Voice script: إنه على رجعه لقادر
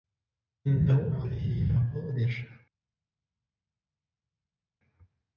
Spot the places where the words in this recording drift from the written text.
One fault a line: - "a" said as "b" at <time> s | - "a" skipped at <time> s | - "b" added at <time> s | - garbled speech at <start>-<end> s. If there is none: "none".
- "على" skipped at 1.2 s